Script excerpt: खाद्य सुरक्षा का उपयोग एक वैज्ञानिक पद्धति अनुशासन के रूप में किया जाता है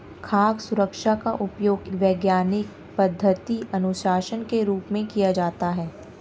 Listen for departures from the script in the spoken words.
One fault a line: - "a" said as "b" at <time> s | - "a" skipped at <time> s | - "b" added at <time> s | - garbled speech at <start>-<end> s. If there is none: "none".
- "एक" skipped at 1.9 s